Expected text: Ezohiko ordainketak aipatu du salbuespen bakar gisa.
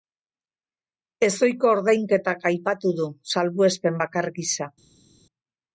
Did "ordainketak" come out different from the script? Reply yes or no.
no